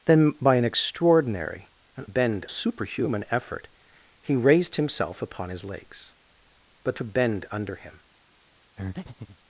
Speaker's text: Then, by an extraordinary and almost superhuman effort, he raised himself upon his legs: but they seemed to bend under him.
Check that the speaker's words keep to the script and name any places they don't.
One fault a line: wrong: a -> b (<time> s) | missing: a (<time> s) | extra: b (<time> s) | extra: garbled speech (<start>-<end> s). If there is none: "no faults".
wrong: almost -> bend (2.0 s)
missing: they seemed (7.0 s)